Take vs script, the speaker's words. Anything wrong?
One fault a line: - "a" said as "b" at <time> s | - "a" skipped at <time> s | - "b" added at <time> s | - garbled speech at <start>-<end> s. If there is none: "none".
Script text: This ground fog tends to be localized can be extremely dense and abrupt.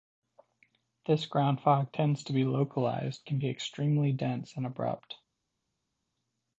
none